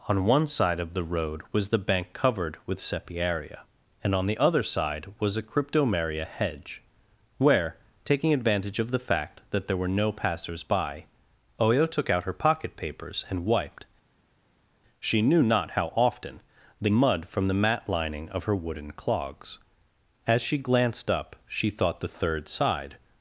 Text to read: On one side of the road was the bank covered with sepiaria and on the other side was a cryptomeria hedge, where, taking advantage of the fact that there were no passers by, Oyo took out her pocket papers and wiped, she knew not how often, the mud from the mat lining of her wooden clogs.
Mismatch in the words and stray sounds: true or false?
true